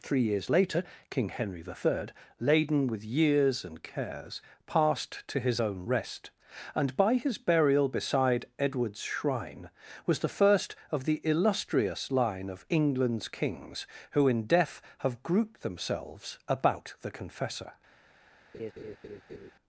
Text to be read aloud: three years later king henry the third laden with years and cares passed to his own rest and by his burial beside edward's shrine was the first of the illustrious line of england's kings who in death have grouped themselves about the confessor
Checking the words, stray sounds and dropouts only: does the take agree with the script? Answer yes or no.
no